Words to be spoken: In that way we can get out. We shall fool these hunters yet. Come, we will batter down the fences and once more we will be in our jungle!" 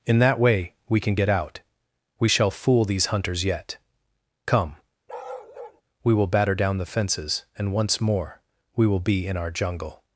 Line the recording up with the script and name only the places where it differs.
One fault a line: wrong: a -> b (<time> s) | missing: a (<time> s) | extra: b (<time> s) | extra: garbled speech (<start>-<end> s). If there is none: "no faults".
no faults